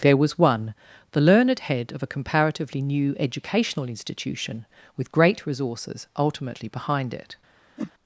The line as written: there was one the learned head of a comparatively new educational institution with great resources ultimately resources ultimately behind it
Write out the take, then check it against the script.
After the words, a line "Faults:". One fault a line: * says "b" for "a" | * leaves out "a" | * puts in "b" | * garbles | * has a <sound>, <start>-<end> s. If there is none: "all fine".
there was one the learned head of a comparatively new educational institution with great resources ultimately behind it
Faults:
* leaves out "resources ultimately"
* has a whoosh, 7.8-7.9 s